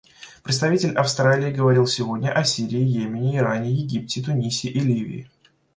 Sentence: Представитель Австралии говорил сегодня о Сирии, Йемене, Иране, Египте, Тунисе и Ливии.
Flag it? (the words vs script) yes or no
no